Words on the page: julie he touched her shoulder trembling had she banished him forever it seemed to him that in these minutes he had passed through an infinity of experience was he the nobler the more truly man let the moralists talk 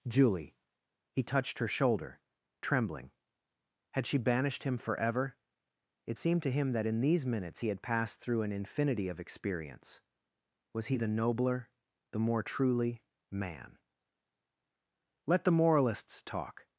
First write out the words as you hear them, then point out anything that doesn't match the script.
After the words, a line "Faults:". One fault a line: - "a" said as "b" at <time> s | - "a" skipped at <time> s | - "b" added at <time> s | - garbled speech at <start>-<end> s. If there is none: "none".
julie he touched her shoulder trembling had she banished him forever it seemed to him that in these minutes he had passed through an infinity of experience was he the nobler the more truly man let the moralists talk
Faults:
none